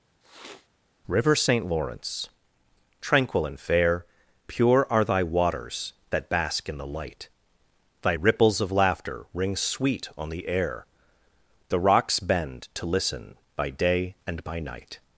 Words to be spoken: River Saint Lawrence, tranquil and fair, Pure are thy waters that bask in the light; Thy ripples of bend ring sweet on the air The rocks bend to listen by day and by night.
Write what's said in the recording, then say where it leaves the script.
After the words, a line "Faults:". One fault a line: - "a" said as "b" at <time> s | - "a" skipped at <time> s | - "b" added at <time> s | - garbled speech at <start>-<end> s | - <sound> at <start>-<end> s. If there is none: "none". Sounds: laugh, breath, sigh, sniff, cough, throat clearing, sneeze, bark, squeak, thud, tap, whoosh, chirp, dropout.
River Saint Lawrence, tranquil and fair, Pure are thy waters that bask in the light; Thy ripples of laughter ring sweet on the air The rocks bend to listen by day and by night.
Faults:
- sniff at 0.2-0.7 s
- "bend" said as "laughter" at 8.7 s